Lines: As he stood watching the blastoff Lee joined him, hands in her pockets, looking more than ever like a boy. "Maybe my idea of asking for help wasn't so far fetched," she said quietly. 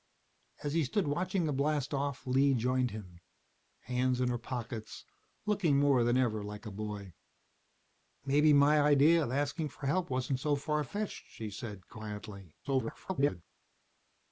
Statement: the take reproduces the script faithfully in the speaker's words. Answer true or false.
false